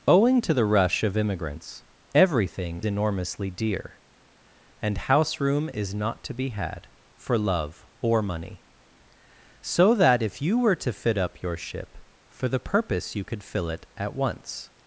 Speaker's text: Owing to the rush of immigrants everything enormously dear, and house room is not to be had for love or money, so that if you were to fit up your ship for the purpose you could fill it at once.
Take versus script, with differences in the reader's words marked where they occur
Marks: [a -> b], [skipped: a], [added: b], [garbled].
Owing to the rush of immigrants everything enormously dear, and house room is not to be had for love or money, so that if you were to fit up your ship for the purpose you could fill it at once.